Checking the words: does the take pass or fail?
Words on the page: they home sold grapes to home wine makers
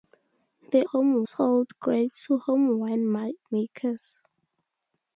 pass